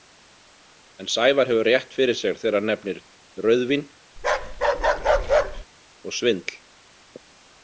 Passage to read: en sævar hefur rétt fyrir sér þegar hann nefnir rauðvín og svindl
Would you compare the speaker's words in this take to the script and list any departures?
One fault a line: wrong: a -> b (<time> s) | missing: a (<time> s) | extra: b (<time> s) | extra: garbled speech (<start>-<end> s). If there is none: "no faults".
no faults